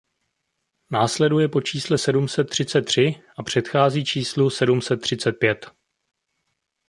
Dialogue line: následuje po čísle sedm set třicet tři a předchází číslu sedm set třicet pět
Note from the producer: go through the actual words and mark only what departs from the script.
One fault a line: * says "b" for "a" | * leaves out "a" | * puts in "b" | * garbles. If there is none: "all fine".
all fine